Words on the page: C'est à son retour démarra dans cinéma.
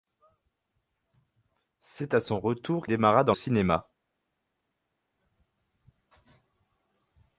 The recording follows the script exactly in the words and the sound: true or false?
true